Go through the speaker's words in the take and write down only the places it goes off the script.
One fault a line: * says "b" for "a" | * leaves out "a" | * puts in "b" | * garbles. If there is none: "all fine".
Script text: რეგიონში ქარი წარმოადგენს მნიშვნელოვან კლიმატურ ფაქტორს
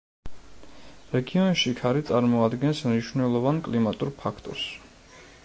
all fine